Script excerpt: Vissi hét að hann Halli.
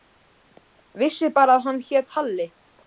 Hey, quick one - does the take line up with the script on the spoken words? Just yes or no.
no